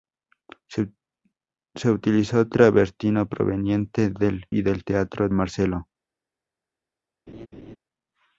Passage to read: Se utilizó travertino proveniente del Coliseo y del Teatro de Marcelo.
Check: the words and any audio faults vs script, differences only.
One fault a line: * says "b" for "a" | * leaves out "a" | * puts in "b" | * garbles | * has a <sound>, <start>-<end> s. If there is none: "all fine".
* leaves out "Coliseo"
* leaves out "de"
* has a laugh, 7.3-7.8 s